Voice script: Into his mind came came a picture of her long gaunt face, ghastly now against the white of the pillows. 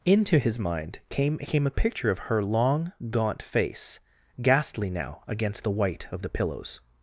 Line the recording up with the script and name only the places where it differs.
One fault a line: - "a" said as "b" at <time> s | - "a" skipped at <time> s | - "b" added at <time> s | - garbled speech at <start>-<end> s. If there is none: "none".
none